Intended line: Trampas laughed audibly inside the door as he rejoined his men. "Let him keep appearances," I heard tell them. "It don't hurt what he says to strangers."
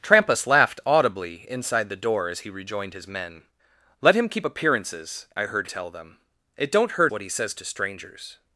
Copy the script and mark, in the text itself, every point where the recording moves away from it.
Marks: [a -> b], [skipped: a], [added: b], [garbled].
Trampas laughed audibly inside the door as he rejoined his men. "Let him keep appearances," I heard tell them. "It don't hurt what he says to strangers."